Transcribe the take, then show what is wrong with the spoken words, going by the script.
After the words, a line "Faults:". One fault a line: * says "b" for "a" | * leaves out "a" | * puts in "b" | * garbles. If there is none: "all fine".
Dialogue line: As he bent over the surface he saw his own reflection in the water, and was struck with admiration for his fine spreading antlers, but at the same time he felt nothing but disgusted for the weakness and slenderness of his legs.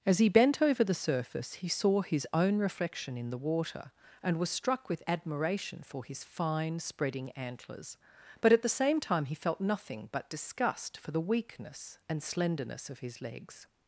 As he bent over the surface he saw his own reflection in the water, and was struck with admiration for his fine spreading antlers, but at the same time he felt nothing but disgust for the weakness and slenderness of his legs.
Faults:
* says "disgust" for "disgusted"